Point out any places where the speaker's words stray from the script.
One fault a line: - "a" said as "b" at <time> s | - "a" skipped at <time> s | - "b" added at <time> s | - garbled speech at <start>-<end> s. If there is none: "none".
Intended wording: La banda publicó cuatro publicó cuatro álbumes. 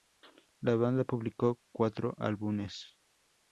- "publicó cuatro" skipped at 2.1 s